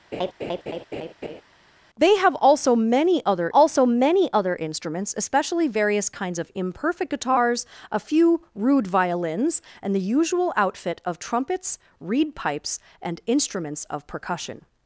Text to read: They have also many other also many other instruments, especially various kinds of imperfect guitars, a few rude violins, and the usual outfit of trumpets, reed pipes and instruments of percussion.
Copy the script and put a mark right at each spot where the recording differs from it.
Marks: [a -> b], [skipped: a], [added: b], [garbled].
They have also many other also many other instruments, especially various kinds of imperfect guitars, a few rude violins, and the usual outfit of trumpets, reed pipes and instruments of percussion.